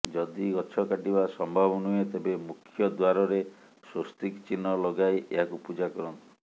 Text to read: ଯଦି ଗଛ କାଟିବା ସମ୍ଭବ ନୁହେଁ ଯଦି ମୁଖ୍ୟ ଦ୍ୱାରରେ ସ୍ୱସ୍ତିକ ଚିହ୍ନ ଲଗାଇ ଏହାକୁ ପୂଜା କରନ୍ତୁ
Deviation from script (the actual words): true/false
true